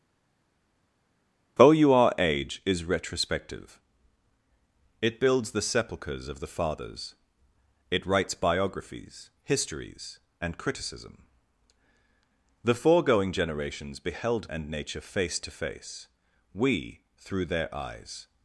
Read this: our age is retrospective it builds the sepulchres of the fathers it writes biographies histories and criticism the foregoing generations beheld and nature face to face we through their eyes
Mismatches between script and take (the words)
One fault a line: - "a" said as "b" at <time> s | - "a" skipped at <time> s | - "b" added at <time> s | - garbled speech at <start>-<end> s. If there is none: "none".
none